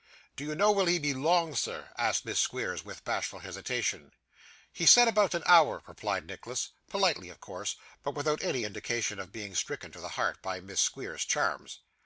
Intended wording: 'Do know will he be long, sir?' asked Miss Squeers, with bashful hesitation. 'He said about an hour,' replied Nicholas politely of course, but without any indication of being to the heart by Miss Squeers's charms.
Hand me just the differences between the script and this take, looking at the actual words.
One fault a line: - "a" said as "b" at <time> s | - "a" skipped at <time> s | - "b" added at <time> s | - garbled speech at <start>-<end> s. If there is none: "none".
- "you" added at 0.4 s
- "stricken" added at 9.5 s